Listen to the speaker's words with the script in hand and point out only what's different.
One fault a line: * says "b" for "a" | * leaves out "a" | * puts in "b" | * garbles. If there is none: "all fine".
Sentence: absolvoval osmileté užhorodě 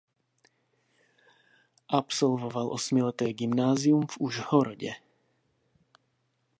* puts in "gymnázium v"